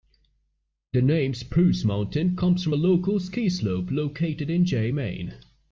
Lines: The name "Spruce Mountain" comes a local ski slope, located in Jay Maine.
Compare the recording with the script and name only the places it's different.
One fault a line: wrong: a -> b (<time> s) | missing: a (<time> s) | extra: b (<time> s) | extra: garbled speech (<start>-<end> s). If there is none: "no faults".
extra: from (2.6 s)